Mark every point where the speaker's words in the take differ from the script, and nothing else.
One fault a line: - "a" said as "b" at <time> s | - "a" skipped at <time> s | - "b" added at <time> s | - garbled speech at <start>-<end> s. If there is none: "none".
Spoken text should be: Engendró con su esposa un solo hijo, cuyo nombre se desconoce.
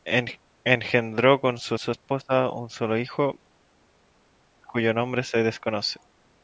- "su" added at 1.8 s